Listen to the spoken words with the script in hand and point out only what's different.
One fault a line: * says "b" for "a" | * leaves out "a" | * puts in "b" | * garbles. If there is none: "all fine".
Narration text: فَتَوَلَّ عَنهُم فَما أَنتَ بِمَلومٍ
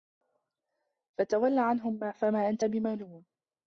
all fine